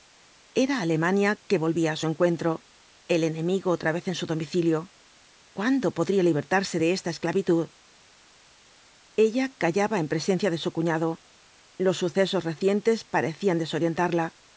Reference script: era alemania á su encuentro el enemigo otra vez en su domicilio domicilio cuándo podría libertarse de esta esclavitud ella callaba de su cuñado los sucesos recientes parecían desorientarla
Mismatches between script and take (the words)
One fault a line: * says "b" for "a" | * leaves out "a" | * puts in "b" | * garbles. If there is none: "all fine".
* puts in "que volvía"
* leaves out "domicilio"
* puts in "en presencia"